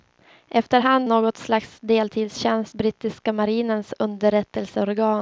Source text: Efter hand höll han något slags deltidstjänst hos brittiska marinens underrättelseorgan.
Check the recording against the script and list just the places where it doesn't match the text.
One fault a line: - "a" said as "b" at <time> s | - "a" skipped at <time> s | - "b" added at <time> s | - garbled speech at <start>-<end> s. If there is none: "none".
- "höll han" skipped at 1.1 s
- "hos" skipped at 2.7 s